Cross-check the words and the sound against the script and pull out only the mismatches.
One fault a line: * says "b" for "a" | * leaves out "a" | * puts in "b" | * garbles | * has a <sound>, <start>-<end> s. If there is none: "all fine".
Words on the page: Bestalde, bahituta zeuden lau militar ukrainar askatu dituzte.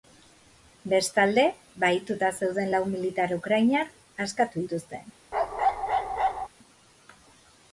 * has a bark, 5.3-6.5 s